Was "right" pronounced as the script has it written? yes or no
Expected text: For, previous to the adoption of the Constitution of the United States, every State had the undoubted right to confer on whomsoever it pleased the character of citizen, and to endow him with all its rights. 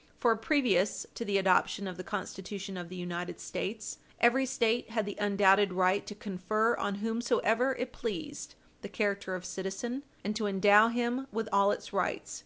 yes